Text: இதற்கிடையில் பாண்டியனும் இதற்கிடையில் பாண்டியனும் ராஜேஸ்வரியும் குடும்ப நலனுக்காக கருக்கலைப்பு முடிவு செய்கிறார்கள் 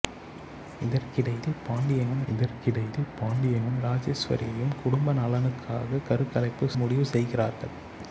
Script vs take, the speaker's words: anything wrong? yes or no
no